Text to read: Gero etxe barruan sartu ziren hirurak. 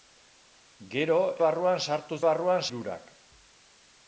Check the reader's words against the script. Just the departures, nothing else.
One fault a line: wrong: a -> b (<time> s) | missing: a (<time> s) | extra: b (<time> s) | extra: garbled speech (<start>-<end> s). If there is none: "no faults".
missing: etxe (1.2 s)
wrong: ziren -> barruan (2.3 s)